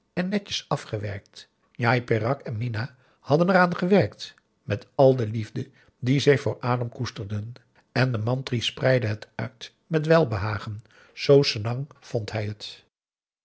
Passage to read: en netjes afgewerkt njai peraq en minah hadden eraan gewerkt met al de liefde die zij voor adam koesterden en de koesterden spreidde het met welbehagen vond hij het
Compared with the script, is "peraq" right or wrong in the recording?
right